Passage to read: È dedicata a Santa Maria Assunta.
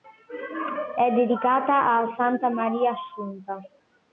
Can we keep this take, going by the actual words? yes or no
yes